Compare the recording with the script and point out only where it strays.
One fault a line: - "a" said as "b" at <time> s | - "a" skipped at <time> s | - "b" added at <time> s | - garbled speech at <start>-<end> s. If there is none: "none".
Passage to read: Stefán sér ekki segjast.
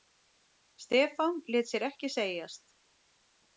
- "lét" added at 1.4 s